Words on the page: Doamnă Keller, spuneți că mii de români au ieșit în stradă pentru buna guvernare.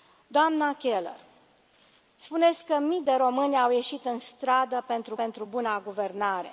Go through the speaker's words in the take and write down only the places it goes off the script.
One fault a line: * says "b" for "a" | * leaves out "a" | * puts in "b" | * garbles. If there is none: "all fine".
* puts in "pentru"